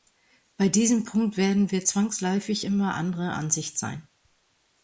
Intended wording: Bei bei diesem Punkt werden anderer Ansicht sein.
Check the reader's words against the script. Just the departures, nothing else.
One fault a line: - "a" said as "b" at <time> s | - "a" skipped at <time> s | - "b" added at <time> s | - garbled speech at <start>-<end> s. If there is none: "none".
- "bei" skipped at 0.7 s
- "wir zwangsläufig immer" added at 1.7 s